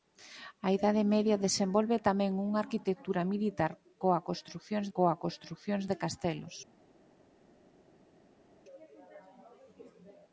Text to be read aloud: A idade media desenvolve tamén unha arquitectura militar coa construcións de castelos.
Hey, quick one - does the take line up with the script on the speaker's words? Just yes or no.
no